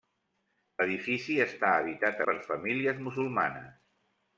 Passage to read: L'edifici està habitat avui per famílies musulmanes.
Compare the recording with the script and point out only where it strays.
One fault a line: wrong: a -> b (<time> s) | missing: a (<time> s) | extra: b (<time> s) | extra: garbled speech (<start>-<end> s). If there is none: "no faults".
missing: avui (2.2 s)